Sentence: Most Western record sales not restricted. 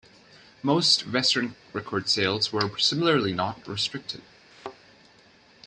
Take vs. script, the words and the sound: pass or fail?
fail